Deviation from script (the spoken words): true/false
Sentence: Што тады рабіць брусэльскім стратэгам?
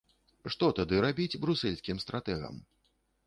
false